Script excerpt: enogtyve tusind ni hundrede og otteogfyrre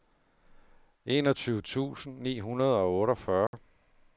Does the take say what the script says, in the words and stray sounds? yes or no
no